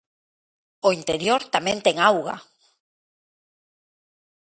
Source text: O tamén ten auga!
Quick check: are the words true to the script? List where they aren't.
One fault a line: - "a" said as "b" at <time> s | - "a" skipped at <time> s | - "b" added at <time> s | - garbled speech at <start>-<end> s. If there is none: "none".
- "interior" added at 1.0 s